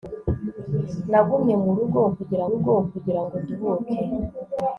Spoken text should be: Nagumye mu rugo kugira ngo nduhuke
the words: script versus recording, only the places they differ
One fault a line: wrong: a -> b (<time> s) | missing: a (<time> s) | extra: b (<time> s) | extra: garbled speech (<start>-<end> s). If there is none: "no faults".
extra: rugo kugira (2.5 s)